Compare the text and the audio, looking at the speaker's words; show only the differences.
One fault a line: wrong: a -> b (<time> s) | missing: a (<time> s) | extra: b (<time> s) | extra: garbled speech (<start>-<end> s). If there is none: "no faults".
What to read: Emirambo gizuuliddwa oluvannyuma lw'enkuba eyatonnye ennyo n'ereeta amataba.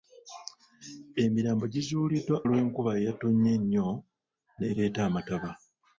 missing: oluvannyuma (2.4 s)